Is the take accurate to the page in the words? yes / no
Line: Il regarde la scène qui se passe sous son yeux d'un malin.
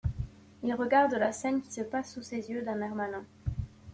no